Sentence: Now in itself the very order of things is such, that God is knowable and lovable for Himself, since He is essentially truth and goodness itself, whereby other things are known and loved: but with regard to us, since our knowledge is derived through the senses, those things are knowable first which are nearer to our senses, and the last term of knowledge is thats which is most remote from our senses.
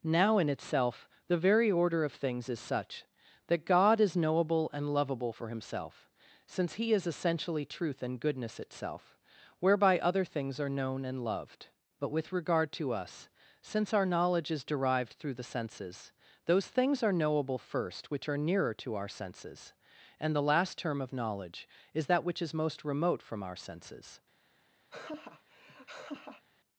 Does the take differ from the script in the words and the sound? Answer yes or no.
yes